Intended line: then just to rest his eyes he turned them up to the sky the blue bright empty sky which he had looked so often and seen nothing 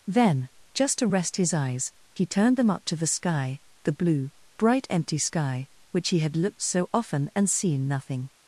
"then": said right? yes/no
yes